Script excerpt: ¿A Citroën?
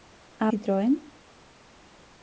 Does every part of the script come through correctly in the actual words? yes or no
yes